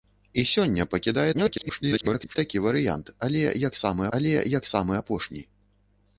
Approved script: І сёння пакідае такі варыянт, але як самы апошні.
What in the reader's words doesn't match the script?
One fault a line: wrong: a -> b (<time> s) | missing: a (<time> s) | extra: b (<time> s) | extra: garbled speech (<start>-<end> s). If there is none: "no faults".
extra: garbled speech (1.3-2.4 s)
extra: але як самы (4.2 s)